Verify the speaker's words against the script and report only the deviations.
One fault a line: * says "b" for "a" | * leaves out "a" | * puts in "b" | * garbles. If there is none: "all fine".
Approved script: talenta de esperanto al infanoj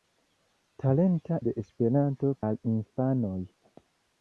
all fine